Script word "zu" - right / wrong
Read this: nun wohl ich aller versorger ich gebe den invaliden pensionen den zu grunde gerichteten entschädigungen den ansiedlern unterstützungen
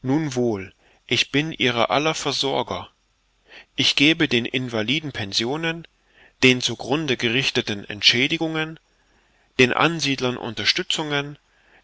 right